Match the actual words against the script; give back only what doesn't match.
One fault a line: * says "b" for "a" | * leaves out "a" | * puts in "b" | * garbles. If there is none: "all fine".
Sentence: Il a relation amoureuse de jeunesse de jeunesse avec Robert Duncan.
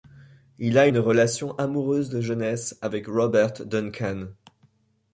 * puts in "une"
* leaves out "de jeunesse"